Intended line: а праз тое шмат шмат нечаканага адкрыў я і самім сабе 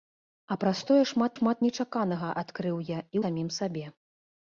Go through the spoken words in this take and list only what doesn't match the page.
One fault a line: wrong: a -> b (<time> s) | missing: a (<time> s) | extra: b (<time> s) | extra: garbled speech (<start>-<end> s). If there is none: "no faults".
no faults